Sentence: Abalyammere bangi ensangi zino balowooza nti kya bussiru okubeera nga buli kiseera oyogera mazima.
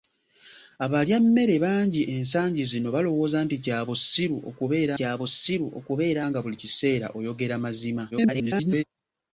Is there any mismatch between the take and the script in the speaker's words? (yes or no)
yes